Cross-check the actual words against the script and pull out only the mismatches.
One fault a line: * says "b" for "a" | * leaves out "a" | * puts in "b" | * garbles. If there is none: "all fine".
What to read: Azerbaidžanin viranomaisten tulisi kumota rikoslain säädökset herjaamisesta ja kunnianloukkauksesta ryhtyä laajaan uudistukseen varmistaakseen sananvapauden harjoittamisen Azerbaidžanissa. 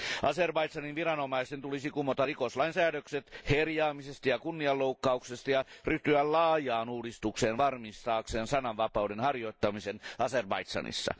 * puts in "ja"